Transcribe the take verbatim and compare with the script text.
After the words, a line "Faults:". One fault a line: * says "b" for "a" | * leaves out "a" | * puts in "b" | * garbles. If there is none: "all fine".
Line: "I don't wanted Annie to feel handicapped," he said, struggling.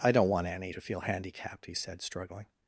"I don't want Annie to feel handicapped," he said, struggling.
Faults:
* says "want" for "wanted"